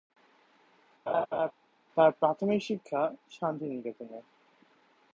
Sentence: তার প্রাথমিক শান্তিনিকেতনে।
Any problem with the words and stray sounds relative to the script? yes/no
yes